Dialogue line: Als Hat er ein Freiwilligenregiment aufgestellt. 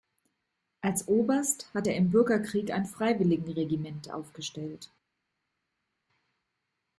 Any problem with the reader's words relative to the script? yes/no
yes